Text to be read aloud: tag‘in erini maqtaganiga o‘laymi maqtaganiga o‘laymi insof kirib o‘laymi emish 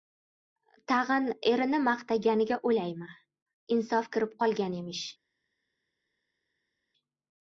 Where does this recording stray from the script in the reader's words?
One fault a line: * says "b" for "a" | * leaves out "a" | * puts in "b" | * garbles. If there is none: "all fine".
* leaves out "maqtaganiga o‘laymi"
* says "qolgan" for "o‘laymi"